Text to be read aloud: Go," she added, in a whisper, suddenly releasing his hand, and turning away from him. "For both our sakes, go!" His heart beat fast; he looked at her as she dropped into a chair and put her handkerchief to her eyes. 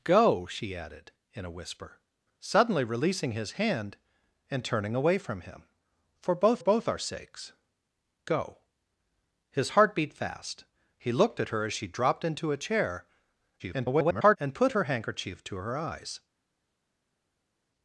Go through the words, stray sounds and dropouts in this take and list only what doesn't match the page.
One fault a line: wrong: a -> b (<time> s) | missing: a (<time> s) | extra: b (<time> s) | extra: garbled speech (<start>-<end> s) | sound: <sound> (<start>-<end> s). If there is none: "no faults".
extra: both (6.6 s)
extra: garbled speech (13.6-14.4 s)